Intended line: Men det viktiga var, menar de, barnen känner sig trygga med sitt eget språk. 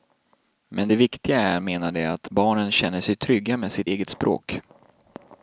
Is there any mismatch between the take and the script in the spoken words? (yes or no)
yes